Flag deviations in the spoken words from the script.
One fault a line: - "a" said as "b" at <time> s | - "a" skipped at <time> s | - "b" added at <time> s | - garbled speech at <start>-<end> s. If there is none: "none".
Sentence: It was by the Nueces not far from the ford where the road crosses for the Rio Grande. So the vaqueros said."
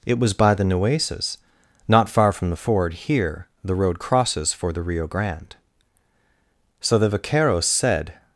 - "where" said as "here" at 2.9 s